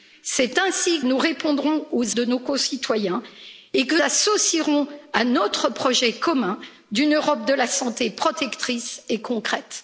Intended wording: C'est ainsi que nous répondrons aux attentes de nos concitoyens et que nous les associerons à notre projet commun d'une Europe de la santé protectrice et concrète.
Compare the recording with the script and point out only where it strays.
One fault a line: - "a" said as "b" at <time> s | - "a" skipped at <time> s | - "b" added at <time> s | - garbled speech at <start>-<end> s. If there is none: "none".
- "que" skipped at 1.0 s
- "attentes" skipped at 2.2 s
- "nous les" skipped at 3.9 s